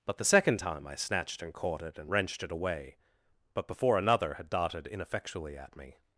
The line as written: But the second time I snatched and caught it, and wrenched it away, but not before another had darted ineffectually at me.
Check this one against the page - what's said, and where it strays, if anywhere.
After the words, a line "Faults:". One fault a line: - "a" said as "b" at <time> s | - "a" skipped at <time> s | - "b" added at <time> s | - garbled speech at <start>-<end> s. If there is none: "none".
But the second time I snatched and caught it, and wrenched it away, but before another had darted ineffectually at me.
Faults:
- "not" skipped at 3.7 s